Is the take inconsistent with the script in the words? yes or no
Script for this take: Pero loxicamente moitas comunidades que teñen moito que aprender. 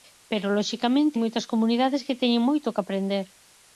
no